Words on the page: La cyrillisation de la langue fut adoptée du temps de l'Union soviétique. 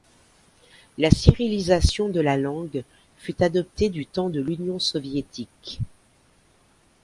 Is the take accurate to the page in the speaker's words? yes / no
yes